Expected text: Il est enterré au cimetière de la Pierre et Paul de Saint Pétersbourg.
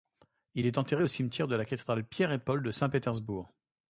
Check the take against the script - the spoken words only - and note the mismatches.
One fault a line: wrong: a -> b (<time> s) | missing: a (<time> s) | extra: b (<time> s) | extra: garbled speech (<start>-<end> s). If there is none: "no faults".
extra: Cathédrale (1.6 s)